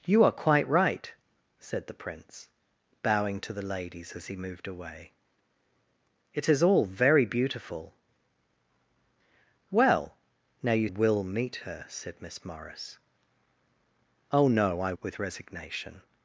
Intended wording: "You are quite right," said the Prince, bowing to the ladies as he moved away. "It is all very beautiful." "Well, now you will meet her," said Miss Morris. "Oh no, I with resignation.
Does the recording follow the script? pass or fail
pass